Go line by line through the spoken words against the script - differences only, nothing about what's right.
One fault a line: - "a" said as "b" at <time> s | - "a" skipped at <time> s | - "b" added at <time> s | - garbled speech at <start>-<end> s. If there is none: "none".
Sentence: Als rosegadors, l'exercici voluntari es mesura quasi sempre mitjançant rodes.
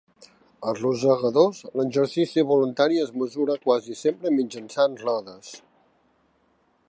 none